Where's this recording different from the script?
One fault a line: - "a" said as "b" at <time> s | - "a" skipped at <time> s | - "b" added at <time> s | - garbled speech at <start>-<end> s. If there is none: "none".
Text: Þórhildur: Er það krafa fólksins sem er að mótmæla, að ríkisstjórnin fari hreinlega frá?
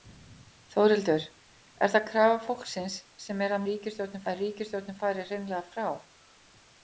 - "mótmæla" said as "ríkisstjórnin" at 3.7 s